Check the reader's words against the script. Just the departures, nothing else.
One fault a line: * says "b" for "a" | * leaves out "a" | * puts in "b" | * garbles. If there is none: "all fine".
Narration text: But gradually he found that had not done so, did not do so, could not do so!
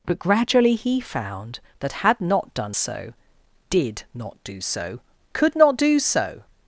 all fine